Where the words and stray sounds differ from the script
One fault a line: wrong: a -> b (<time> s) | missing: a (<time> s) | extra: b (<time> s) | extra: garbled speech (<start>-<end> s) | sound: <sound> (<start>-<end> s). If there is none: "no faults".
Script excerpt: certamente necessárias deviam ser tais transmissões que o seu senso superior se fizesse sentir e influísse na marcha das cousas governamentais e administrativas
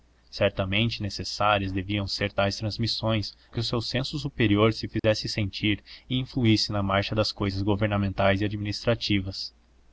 sound: dropout (5.0-5.0 s)